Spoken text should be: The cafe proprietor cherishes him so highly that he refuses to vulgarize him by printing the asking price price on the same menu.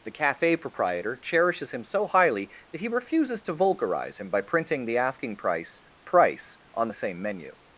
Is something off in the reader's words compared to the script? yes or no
no